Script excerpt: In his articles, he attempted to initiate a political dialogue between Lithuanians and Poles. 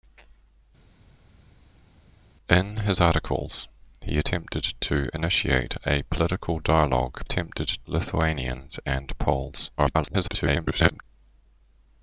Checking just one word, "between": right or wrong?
wrong